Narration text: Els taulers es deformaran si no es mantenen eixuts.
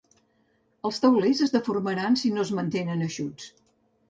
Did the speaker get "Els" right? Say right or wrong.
right